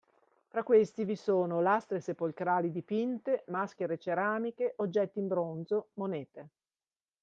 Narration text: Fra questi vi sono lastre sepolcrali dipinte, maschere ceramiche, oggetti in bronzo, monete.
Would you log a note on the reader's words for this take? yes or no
no